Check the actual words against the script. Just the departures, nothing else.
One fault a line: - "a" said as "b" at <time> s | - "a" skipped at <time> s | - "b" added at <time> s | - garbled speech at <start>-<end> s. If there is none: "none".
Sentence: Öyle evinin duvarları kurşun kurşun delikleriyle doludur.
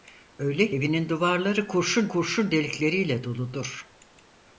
none